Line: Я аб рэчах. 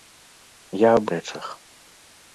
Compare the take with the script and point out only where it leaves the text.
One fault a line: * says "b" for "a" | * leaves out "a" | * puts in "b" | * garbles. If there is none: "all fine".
all fine